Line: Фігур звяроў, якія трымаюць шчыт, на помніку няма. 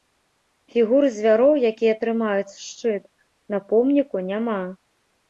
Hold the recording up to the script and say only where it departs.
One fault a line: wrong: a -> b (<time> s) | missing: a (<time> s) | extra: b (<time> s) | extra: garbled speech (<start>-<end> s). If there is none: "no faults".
no faults